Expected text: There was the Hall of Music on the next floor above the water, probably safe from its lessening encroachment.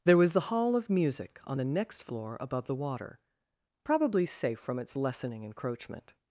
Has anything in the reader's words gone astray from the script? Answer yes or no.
no